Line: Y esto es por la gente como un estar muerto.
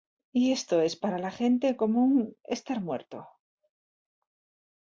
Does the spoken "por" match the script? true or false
false